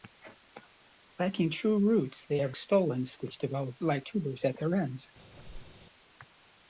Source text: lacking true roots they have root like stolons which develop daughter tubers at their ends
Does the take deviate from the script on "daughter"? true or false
true